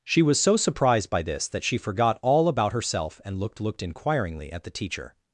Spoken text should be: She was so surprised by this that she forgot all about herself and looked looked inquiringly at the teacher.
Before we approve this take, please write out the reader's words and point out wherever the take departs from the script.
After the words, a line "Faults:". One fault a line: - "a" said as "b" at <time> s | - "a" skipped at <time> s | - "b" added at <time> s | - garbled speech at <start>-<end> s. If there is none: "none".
She was so surprised by this that she forgot all about herself and looked looked inquiringly at the teacher.
Faults:
none